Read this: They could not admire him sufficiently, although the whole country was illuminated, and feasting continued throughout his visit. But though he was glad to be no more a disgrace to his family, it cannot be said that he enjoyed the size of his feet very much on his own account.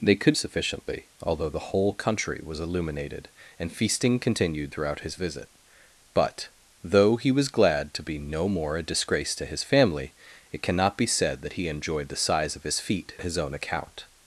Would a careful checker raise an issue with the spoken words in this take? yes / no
yes